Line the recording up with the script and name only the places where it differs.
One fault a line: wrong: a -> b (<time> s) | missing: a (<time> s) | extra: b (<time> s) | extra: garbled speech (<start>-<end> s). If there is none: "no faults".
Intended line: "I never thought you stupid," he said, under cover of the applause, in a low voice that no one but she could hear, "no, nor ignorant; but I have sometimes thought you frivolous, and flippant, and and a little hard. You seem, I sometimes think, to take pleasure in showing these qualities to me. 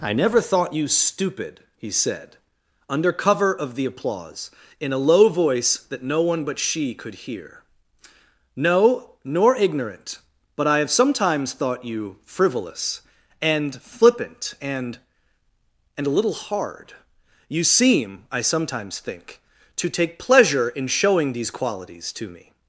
no faults